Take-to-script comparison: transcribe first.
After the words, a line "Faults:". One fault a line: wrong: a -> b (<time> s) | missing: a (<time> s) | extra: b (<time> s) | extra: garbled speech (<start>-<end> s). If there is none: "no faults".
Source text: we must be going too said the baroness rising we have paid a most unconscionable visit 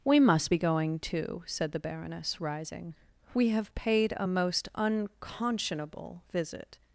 we must be going too said the baroness rising we have paid a most unconscionable visit
Faults:
no faults